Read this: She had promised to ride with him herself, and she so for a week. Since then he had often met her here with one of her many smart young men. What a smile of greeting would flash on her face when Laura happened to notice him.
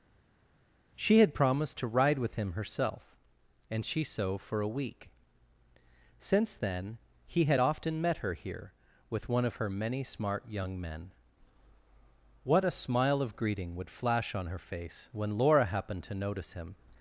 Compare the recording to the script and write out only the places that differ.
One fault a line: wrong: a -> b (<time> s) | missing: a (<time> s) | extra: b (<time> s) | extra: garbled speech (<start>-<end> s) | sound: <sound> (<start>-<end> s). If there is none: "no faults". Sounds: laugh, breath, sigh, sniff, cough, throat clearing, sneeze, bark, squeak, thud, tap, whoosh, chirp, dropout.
no faults